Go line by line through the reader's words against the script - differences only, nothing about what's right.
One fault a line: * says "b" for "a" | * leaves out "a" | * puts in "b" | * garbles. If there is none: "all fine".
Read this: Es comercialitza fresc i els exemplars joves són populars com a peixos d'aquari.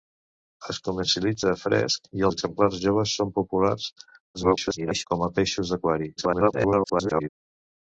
* leaves out "els"
* garbles
* garbles